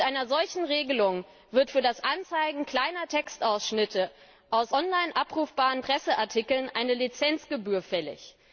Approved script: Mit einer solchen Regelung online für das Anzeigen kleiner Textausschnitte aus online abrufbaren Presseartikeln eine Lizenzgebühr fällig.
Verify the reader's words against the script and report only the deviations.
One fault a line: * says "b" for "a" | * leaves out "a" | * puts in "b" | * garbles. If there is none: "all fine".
* says "wird" for "online"